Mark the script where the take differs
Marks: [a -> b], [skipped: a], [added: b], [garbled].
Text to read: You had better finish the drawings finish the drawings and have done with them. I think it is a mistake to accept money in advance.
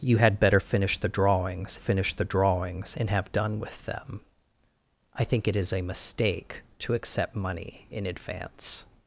You had better finish the drawings finish the drawings and have done with them. I think it is a mistake to accept money in advance.